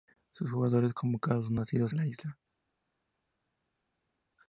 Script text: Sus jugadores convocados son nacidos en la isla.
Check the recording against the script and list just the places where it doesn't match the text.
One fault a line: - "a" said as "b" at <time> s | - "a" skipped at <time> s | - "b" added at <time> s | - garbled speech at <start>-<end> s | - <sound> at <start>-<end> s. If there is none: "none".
- "en" skipped at 1.9 s